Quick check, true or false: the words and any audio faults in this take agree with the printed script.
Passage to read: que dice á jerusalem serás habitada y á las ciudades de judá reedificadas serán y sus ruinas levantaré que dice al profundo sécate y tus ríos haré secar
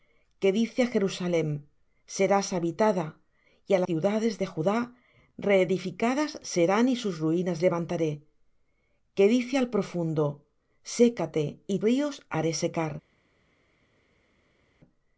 false